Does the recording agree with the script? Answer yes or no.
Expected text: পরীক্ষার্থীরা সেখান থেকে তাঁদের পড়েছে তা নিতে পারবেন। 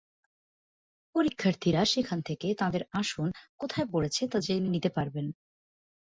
no